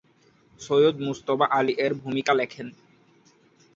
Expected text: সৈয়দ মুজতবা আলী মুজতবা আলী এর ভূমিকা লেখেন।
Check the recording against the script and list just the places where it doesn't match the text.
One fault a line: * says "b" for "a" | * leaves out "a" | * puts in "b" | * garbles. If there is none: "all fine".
* leaves out "মুজতবা আলী"